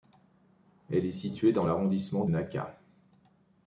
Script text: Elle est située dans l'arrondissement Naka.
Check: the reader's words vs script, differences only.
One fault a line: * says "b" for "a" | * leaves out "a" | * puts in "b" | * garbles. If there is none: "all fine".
all fine